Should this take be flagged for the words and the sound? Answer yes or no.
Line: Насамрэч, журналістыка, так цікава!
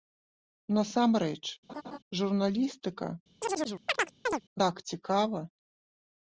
yes